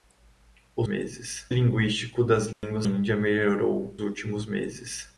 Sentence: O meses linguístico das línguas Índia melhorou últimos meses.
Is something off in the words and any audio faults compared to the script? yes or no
yes